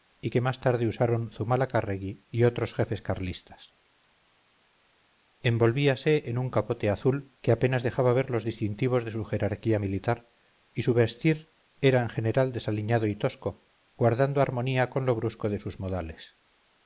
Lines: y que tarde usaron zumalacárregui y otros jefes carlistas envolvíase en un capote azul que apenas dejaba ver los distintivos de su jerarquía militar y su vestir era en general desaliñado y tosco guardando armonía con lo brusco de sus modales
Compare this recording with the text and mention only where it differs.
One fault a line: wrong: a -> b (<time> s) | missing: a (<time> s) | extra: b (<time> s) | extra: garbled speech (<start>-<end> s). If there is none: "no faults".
extra: más (0.4 s)